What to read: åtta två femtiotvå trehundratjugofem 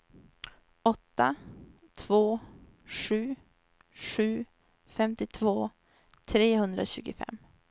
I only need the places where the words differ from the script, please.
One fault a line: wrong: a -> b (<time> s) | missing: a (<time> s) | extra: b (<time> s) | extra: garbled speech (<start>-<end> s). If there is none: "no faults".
extra: sju sju (2.8 s)